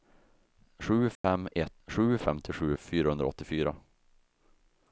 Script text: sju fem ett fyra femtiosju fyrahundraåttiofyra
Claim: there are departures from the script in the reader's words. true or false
true